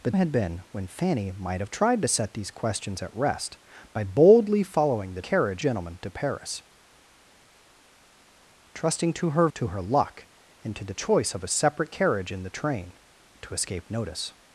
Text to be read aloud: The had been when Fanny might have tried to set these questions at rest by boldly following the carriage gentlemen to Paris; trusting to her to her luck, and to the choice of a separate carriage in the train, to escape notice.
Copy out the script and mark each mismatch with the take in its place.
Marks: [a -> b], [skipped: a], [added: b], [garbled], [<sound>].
The had been when Fanny might have tried to set these questions at rest by boldly following the carriage gentlemen to Paris; trusting to her to her luck, and to the choice of a separate carriage in the train, to escape notice.